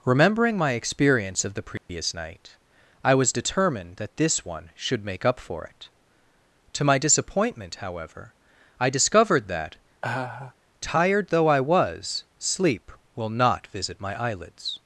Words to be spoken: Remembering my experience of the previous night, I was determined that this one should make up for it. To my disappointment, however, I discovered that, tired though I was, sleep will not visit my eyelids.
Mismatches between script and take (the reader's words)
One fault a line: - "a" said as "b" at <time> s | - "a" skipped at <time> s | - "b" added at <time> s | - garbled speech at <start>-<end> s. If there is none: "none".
none